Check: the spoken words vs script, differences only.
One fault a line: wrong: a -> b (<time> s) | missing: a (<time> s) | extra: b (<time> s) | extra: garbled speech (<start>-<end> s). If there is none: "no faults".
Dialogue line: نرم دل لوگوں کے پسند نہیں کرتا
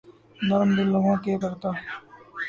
missing: پسند نہیں (1.3 s)